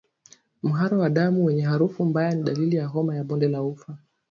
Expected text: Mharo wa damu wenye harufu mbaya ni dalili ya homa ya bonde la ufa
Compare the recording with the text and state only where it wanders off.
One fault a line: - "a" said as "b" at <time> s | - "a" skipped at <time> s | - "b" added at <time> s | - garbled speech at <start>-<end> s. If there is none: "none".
none